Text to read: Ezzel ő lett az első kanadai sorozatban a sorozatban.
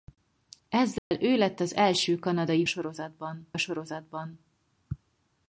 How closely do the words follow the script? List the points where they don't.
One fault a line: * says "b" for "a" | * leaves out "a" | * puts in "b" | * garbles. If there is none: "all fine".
all fine